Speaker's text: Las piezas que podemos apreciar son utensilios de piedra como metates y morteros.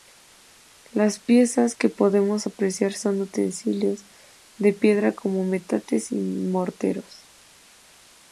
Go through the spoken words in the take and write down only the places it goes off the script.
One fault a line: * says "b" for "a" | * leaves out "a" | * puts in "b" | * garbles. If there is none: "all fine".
all fine